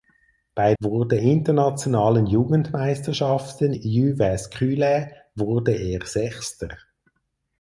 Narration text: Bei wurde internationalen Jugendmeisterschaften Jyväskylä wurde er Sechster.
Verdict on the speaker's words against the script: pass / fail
pass